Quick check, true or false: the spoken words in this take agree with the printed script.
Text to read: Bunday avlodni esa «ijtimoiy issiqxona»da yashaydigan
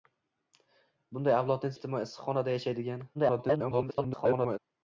false